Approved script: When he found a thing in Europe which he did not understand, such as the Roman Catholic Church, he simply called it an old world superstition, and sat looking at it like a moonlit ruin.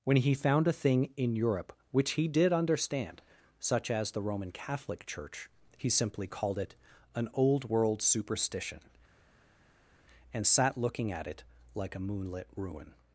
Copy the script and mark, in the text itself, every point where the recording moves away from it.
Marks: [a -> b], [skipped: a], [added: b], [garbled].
When he found a thing in Europe which he did [skipped: not] understand, such as the Roman Catholic Church, he simply called it an old world superstition, and sat looking at it like a moonlit ruin.